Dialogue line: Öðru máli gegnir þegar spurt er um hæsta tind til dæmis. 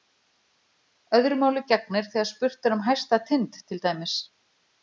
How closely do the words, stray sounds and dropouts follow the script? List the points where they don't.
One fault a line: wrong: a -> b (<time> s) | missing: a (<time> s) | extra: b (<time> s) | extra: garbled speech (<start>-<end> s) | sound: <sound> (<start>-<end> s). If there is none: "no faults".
no faults